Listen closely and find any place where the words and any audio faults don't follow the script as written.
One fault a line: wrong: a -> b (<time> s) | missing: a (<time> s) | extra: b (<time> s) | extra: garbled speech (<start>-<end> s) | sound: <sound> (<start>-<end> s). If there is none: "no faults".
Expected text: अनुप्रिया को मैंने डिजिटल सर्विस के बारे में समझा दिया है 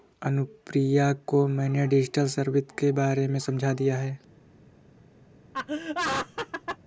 sound: laugh (5.5-6.8 s)